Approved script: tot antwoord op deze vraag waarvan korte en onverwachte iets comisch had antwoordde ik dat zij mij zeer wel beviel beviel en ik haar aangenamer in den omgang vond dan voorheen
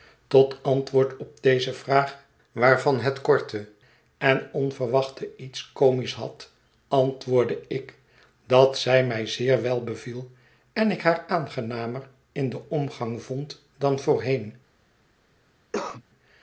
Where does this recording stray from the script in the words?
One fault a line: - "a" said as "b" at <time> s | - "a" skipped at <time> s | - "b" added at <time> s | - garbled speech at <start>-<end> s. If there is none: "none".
- "het" added at 3.0 s
- "beviel" skipped at 10.3 s